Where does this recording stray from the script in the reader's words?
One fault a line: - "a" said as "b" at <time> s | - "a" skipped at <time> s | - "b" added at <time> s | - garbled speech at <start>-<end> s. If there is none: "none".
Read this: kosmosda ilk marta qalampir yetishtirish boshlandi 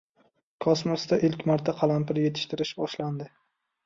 none